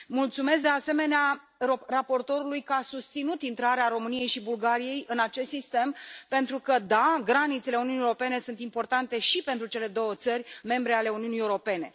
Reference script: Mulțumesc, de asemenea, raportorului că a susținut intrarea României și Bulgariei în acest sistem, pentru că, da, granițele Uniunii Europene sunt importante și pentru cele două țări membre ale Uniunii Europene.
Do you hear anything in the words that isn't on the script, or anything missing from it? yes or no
no